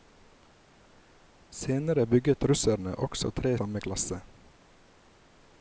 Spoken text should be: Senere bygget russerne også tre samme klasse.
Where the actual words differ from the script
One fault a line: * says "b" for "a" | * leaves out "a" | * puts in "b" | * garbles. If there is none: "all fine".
all fine